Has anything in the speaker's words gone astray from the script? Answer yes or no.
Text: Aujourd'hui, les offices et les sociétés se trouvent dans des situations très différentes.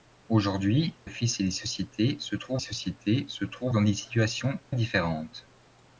yes